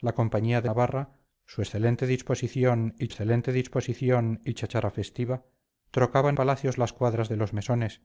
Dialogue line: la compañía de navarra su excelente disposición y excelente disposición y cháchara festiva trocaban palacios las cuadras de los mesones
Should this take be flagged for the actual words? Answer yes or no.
no